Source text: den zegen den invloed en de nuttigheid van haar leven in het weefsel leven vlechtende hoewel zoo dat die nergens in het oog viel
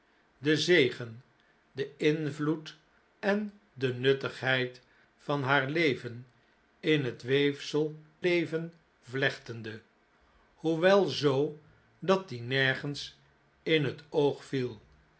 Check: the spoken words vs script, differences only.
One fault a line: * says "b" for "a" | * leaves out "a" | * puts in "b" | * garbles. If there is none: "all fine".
all fine